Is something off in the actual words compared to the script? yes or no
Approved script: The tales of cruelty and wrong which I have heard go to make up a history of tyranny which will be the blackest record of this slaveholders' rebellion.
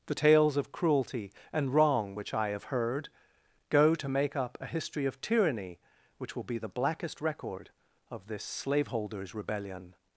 no